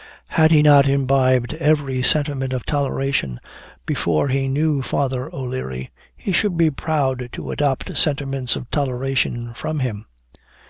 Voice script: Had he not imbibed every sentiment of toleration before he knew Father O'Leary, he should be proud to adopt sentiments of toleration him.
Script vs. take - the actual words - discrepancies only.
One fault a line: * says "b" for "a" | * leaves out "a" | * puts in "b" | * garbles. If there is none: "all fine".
* puts in "from"